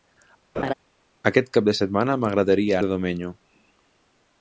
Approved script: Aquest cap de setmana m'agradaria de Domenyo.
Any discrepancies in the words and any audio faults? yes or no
yes